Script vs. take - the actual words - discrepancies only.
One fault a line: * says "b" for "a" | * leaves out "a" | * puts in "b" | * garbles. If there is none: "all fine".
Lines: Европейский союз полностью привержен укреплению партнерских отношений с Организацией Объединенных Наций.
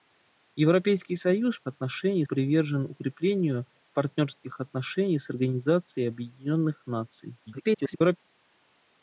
* says "отношений" for "полностью"
* garbles